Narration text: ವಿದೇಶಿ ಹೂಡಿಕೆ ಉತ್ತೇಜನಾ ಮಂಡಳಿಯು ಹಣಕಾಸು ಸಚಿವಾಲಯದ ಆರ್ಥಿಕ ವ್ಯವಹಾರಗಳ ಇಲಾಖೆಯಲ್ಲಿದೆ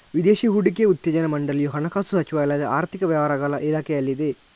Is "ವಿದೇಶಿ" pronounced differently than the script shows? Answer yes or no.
no